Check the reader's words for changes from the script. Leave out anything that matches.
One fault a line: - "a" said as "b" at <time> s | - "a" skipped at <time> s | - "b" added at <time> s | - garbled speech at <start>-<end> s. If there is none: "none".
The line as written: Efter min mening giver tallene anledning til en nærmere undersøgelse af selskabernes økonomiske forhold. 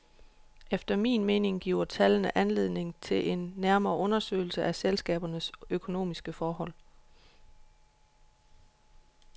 none